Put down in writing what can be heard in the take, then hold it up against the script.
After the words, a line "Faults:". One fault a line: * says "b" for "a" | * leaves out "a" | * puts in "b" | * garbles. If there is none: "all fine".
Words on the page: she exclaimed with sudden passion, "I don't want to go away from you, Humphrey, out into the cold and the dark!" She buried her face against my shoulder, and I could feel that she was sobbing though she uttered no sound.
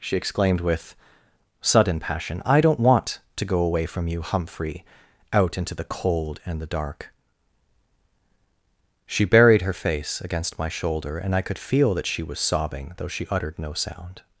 she exclaimed with sudden passion, "I don't want to go away from you, Humphrey, out into the cold and the dark!" She buried her face against my shoulder, and I could feel that she was sobbing though she uttered no sound.
Faults:
all fine